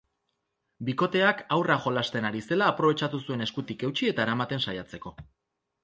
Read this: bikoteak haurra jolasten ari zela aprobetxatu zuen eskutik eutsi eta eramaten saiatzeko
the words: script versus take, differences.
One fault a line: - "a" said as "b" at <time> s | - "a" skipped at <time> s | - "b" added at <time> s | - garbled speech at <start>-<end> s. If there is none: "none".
none